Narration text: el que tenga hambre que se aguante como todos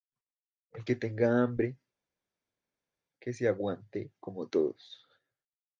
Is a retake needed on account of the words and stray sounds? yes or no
no